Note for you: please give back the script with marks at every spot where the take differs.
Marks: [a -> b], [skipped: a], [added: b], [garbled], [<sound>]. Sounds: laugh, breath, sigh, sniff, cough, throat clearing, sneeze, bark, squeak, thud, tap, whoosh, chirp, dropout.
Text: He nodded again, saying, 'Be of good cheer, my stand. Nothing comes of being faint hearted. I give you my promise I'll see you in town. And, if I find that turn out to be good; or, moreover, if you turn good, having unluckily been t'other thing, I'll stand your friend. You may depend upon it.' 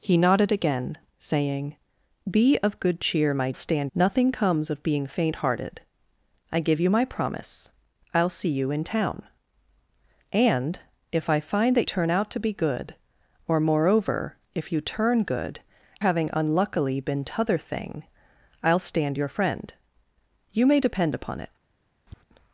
He nodded again, saying, 'Be of good cheer, my stand. Nothing comes of being faint hearted. I give you my promise I'll see you in town. And, if I find that turn out to be good; or, moreover, if you turn good, having unluckily been t'other thing, I'll stand your friend. You may depend upon it.' [tap]